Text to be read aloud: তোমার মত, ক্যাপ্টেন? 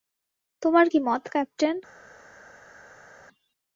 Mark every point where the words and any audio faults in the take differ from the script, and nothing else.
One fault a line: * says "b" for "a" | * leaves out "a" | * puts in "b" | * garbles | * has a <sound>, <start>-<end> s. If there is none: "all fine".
* puts in "কী"